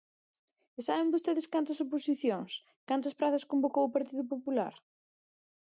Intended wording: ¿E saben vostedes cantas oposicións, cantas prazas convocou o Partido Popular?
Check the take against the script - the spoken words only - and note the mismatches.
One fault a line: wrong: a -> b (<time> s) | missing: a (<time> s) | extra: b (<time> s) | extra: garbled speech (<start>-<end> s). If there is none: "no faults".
no faults